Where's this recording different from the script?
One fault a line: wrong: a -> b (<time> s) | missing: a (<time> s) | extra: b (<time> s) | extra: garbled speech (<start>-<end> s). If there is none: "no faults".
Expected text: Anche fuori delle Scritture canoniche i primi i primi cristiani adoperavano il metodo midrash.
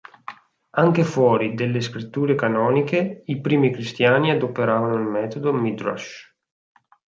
missing: i primi (3.7 s)